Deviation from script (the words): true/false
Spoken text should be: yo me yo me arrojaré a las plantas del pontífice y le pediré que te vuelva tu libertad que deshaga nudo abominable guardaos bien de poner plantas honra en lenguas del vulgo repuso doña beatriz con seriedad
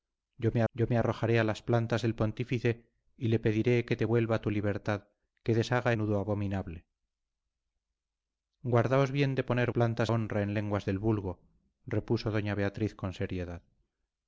false